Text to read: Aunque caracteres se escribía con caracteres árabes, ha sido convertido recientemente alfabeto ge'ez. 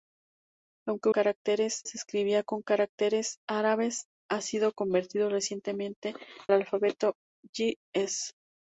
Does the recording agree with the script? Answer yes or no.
yes